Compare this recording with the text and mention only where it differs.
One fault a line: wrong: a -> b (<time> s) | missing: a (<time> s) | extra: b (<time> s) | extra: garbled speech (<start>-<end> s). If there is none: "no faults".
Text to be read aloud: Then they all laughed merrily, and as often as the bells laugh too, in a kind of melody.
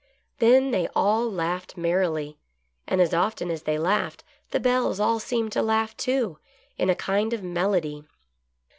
extra: they laughed (3.6 s)
extra: all seemed to (5.0 s)